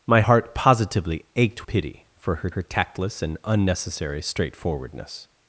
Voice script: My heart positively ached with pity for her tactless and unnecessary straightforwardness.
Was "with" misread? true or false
true